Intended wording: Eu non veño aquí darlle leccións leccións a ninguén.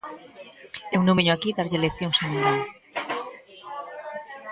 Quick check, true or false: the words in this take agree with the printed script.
false